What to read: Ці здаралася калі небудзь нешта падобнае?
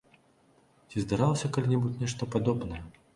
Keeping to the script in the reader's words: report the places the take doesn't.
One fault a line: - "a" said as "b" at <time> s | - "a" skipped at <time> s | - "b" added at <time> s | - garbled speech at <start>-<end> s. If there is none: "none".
none